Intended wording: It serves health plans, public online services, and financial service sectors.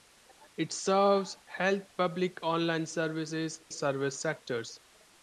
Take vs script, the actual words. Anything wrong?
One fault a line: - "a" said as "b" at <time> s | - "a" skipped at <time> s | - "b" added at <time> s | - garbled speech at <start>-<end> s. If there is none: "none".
- "plans" skipped at 1.8 s
- "and financial" skipped at 3.6 s